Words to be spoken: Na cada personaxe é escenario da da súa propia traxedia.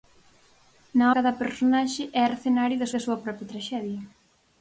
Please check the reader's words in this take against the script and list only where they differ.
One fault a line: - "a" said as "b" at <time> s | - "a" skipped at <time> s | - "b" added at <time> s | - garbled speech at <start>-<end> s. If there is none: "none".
none